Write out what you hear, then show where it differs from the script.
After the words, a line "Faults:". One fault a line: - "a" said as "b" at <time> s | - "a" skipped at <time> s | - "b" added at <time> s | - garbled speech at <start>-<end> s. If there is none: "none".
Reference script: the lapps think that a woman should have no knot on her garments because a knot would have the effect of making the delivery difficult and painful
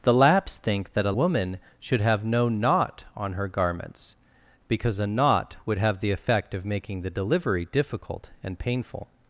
the lapps think that a woman should have no knot on her garments because a knot would have the effect of making the delivery difficult and painful
Faults:
none